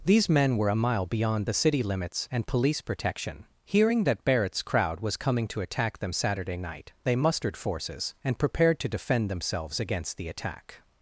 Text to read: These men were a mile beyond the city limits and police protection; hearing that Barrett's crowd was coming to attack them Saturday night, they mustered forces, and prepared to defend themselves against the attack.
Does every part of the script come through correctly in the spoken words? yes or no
yes